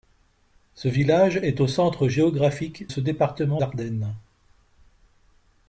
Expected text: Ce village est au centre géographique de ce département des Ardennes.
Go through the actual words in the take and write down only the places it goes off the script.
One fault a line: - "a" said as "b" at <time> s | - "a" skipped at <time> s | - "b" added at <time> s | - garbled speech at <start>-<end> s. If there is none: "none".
- "de" skipped at 2.9 s
- "des" skipped at 3.6 s